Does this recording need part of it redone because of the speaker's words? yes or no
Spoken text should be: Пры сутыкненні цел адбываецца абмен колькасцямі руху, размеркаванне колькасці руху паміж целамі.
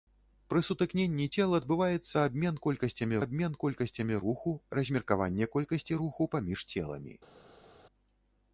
yes